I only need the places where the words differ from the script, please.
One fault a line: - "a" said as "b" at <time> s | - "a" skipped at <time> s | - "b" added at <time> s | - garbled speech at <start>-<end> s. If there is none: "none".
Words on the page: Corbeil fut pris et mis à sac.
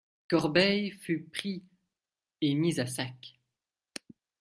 none